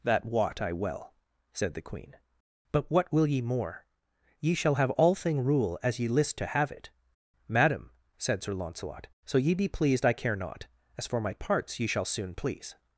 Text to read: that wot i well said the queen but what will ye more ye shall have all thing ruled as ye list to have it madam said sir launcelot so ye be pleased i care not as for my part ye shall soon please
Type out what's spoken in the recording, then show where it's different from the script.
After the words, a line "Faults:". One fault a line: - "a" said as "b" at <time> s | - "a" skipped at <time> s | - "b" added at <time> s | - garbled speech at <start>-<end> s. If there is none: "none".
that wot i well said the queen but what will ye more ye shall have all thing rule as ye list to have it madam said sir launcelot so ye be pleased i care not as for my parts ye shall soon please
Faults:
- "ruled" said as "rule" at 5.4 s
- "part" said as "parts" at 11.3 s